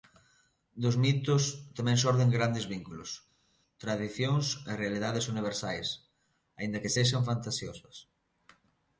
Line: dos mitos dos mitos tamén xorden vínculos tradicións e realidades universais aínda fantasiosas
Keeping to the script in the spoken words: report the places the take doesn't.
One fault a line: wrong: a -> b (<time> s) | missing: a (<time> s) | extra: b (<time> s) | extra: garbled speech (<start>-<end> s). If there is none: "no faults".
missing: dos mitos (1.4 s)
extra: grandes (2.4 s)
extra: que sexan (6.8 s)